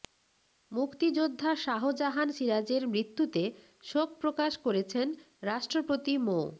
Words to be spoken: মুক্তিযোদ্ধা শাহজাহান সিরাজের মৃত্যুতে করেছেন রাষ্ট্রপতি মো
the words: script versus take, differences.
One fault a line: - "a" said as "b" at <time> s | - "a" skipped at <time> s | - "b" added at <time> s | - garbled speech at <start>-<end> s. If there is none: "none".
- "শোক প্রকাশ" added at 3.8 s